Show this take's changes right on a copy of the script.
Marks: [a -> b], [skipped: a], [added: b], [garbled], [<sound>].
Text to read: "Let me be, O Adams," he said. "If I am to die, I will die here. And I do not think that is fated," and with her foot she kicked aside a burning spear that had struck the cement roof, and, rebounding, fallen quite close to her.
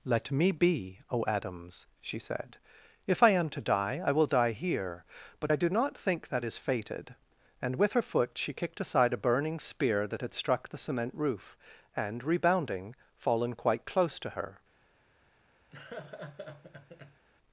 "Let me be, O Adams," [he -> she] said. "If I am to die, I will die here. [And -> But] I do not think that is fated," and with her foot she kicked aside a burning spear that had struck the cement roof, and, rebounding, fallen quite close to her. [laugh]